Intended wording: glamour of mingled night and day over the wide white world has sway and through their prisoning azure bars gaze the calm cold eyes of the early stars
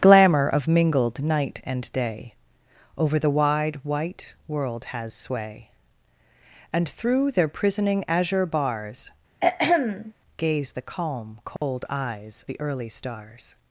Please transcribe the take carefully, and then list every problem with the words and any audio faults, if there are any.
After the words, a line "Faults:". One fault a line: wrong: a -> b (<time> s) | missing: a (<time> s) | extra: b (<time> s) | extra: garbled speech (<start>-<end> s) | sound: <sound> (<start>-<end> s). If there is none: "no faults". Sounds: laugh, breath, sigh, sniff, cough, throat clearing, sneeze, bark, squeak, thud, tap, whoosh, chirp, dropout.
glamour of mingled night and day over the wide white world has sway and through their prisoning azure bars gaze the calm cold eyes the early stars
Faults:
sound: throat clearing (9.4-10.1 s)
sound: dropout (11.6-11.6 s)
missing: of (12.5 s)